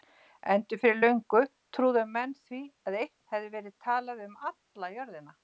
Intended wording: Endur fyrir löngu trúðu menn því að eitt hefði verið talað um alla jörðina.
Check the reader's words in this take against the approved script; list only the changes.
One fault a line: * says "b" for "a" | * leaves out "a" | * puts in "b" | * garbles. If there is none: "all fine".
all fine